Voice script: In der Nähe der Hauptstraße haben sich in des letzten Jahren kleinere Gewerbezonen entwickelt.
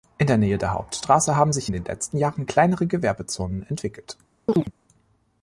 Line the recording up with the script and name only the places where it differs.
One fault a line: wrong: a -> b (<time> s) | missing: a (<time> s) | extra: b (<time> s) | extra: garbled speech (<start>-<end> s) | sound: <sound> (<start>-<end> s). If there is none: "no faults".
wrong: des -> den (1.7 s)
sound: chirp (4.5-4.7 s)